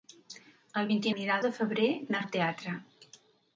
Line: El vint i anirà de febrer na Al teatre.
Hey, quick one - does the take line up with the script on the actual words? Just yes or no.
yes